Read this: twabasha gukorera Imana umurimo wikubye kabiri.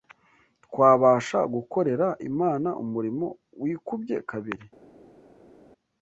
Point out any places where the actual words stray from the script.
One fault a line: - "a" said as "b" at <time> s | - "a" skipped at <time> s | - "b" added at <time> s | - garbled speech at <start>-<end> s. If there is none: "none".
none